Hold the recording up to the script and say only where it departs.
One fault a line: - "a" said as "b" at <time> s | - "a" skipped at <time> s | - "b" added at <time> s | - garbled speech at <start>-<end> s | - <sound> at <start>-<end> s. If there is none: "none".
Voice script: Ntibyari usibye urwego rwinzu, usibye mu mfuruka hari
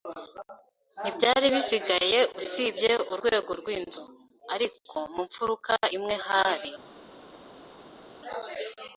- "bisigaye" added at 1.6 s
- "usibye" said as "ariko" at 4.5 s
- "imwe" added at 6.0 s